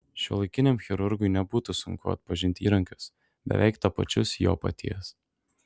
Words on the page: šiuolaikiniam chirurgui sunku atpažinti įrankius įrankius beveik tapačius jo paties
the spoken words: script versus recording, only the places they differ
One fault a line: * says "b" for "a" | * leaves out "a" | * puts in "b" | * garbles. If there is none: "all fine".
* puts in "nebūtų"
* leaves out "įrankius"